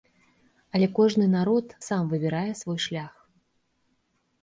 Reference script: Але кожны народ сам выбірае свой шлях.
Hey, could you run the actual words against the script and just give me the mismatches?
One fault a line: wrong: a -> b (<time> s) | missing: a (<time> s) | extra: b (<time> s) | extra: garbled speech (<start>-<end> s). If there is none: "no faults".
no faults